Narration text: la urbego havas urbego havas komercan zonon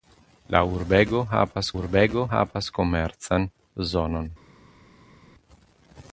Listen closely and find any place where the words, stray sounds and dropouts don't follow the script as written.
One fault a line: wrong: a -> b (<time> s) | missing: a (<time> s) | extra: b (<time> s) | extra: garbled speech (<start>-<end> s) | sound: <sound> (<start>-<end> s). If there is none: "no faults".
no faults